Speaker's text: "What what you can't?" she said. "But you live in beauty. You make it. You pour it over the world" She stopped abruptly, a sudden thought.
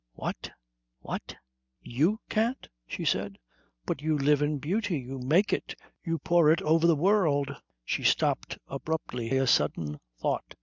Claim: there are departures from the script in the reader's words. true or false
false